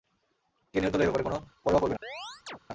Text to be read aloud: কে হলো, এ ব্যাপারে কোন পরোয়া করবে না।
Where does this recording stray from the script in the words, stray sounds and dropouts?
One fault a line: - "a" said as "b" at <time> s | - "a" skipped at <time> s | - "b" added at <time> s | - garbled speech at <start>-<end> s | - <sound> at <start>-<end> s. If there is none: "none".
- "নিহত" added at 0.8 s
- chirp at 2.0-2.6 s